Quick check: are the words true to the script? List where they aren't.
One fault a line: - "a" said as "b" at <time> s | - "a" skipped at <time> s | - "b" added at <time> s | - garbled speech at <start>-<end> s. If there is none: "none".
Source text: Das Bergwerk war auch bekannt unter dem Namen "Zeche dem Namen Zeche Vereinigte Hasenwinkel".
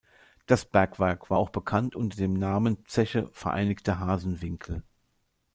- "dem Namen Zeche" skipped at 3.3 s